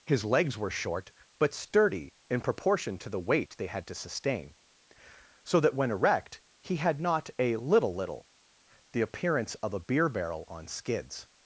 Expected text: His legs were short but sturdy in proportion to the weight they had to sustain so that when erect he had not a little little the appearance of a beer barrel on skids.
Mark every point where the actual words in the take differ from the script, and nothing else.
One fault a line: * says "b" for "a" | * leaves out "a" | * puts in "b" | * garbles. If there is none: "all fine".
all fine